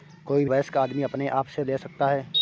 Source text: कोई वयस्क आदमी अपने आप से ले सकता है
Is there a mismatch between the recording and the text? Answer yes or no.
no